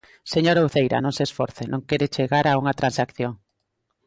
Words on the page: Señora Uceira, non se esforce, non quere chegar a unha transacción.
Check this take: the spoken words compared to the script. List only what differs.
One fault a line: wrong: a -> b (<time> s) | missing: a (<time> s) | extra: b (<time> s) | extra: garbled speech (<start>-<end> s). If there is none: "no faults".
no faults